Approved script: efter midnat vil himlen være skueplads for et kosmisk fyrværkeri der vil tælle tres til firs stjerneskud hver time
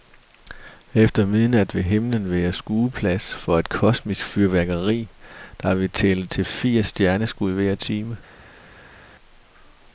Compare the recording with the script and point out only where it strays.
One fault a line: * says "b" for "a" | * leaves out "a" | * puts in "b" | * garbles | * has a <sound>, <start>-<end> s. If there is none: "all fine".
* leaves out "tres"